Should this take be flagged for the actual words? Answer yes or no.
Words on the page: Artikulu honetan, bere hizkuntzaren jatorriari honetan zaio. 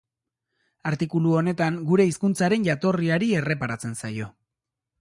yes